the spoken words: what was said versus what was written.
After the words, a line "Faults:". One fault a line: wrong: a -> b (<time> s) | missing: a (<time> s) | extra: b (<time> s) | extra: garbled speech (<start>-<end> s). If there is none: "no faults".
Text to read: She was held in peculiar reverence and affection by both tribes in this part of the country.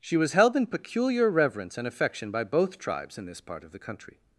She was held in peculiar reverence and affection by both tribes in this part of the country.
Faults:
no faults